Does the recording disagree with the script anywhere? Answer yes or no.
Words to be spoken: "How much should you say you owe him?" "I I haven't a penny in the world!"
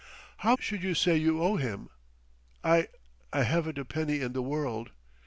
yes